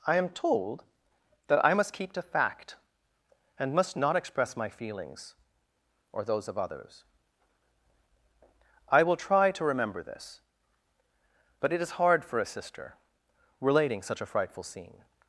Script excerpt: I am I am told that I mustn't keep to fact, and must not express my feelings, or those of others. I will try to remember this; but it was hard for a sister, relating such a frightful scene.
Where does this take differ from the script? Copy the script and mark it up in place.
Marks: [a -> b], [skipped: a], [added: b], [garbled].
I am [skipped: I am] told that I [mustn't -> must] keep to fact, and must not express my feelings, or those of others. I will try to remember this; but it [was -> is] hard for a sister, relating such a frightful scene.